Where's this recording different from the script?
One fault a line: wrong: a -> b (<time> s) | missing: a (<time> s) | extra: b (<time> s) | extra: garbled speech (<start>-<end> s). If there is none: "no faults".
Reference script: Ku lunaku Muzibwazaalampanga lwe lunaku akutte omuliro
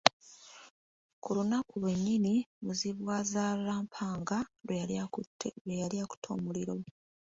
extra: lwennyini (1.8 s)
wrong: lunaku -> yali (4.8 s)